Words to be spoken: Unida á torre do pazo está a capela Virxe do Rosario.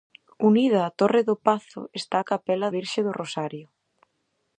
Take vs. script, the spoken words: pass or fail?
pass